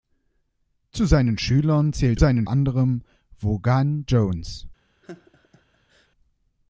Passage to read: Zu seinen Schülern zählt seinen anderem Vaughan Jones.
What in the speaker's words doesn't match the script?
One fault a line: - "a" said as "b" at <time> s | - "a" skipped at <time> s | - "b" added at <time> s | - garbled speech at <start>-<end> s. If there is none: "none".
none